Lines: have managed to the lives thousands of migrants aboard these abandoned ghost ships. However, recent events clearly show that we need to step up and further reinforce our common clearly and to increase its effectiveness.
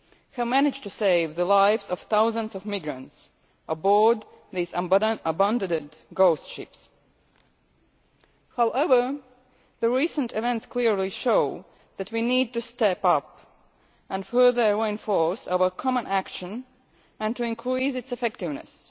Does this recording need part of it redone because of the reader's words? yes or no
yes